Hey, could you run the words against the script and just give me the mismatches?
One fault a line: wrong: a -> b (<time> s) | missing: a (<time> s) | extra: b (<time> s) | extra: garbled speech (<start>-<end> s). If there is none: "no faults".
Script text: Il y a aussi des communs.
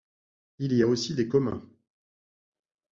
no faults